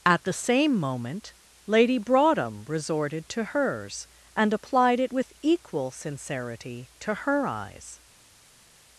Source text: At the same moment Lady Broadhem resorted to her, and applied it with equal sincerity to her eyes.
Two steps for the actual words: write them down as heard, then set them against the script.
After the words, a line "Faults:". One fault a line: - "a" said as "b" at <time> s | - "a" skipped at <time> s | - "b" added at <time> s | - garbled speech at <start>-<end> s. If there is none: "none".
At the same moment Lady Broadhem resorted to hers, and applied it with equal sincerity to her eyes.
Faults:
- "her" said as "hers" at 3.5 s